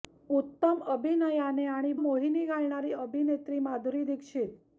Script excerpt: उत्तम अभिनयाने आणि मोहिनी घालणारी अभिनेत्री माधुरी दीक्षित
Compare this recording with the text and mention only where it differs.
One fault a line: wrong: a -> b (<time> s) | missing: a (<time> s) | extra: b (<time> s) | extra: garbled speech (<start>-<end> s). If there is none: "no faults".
no faults